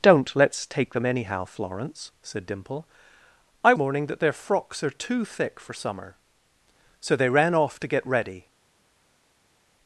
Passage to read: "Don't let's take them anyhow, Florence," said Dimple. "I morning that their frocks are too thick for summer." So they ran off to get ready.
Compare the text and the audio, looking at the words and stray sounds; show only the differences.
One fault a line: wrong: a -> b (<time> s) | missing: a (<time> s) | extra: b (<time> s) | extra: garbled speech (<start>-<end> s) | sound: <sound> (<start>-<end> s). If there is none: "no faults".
no faults